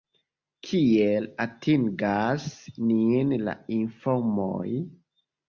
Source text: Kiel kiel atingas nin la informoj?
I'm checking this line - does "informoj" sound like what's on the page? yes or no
yes